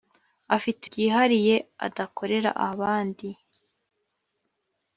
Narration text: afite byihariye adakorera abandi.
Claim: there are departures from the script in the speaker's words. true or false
false